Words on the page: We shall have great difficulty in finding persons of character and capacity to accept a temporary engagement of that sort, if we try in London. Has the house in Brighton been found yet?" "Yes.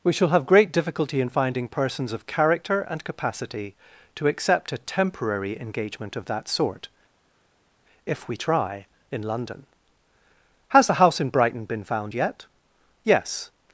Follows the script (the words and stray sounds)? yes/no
yes